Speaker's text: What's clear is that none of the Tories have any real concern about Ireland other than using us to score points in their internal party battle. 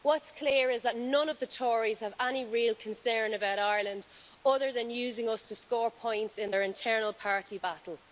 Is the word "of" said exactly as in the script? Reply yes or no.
yes